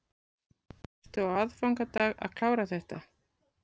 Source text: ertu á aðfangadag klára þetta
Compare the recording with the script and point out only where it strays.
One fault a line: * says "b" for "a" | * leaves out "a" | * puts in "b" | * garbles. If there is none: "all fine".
* puts in "að"